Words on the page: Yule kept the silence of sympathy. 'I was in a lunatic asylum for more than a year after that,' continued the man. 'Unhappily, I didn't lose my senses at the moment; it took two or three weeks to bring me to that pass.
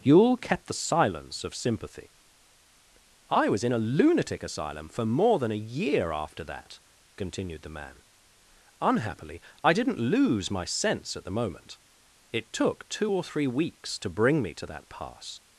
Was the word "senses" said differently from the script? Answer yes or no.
yes